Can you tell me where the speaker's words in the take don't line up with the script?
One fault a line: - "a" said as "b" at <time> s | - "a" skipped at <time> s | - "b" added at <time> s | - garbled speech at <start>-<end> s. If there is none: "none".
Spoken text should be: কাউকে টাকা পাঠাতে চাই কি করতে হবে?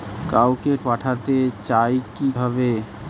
- "টাকা" skipped at 0.7 s
- "করতে" skipped at 2.3 s